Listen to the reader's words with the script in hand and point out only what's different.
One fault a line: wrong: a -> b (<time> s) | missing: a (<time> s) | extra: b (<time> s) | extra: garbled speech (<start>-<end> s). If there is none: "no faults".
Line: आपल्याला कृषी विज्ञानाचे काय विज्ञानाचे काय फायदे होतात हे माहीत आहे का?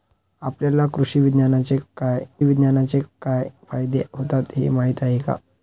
no faults